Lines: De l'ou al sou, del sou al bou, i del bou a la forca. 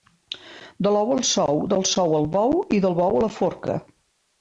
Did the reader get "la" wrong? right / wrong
right